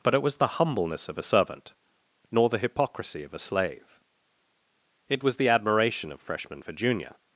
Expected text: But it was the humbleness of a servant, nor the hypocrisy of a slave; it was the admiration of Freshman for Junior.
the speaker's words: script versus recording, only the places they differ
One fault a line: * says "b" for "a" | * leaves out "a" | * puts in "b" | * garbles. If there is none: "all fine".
all fine